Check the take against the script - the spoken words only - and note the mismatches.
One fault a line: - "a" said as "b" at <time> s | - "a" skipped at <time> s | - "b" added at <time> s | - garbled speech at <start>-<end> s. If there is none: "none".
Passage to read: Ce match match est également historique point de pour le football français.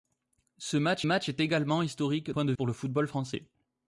none